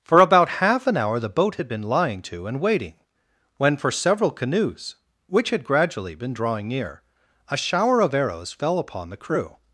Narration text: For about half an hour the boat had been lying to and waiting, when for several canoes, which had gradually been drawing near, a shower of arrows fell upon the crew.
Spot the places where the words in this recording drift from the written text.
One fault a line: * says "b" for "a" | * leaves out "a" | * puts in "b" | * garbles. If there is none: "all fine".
all fine